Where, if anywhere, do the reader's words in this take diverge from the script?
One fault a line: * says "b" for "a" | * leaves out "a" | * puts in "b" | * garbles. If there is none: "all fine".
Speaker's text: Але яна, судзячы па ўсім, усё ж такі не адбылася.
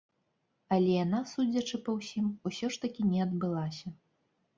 all fine